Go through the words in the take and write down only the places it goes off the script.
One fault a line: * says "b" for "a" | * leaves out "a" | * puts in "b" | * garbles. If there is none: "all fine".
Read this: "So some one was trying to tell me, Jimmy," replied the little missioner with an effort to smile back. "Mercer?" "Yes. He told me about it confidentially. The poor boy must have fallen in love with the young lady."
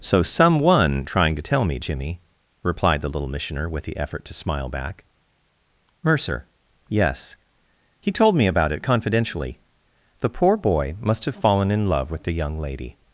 * leaves out "was"
* says "the" for "an"